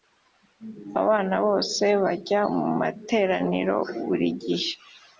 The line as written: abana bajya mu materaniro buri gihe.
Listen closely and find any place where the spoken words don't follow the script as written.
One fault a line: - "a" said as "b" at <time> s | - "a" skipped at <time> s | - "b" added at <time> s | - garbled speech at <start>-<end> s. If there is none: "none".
- "bose" added at 1.4 s